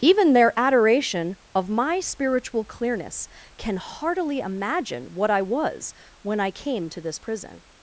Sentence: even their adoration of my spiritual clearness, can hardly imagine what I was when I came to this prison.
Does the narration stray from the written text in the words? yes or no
yes